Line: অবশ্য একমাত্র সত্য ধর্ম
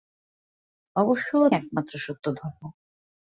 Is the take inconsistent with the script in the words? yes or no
no